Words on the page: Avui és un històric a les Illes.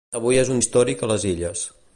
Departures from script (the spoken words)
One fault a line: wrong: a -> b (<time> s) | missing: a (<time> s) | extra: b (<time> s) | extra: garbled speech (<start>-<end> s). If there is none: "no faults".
no faults